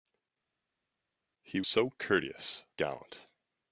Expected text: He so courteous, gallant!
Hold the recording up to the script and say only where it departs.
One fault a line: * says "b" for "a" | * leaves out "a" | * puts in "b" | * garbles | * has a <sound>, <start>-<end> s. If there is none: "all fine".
all fine